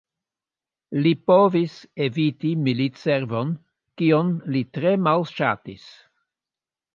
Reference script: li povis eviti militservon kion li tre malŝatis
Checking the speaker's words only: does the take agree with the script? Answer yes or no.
yes